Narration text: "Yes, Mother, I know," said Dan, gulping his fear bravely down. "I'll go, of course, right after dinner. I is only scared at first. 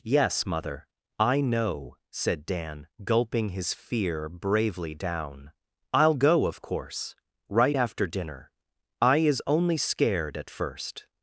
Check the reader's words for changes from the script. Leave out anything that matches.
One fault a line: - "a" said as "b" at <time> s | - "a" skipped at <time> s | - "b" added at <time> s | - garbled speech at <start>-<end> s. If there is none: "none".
none